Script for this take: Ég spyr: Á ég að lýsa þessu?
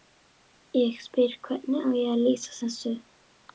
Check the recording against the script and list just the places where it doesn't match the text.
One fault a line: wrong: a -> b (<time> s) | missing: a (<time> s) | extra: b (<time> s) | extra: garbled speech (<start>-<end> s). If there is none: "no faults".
extra: Hvernig (1.5 s)